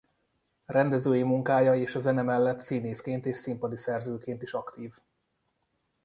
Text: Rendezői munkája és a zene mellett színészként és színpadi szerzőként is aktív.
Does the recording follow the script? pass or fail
pass